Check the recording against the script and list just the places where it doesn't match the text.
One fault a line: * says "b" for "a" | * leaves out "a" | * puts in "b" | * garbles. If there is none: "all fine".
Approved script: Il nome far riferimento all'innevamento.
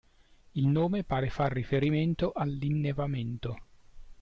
* puts in "pare"